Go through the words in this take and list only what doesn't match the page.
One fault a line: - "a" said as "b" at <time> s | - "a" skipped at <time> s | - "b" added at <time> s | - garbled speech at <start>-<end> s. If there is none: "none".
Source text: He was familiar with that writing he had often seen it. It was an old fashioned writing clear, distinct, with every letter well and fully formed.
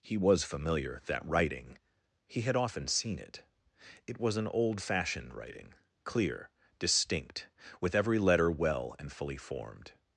- "with" skipped at 1.0 s